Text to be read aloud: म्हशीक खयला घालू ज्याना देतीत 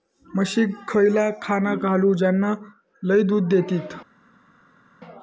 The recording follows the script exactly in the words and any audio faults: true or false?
false